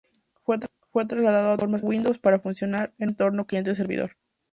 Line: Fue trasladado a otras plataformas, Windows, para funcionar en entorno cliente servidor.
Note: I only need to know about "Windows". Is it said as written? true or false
true